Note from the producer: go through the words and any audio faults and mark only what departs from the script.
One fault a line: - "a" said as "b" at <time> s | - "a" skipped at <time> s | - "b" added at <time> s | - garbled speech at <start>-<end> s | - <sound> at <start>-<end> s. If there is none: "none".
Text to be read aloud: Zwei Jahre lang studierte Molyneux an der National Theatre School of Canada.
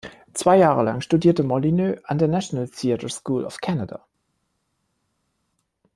none